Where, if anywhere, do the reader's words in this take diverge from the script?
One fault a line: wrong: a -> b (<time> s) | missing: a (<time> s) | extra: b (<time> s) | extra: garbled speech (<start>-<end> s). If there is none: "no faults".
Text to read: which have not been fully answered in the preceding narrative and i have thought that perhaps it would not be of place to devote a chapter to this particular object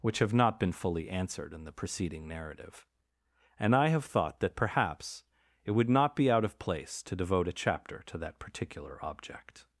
extra: out (6.3 s)
wrong: this -> that (8.2 s)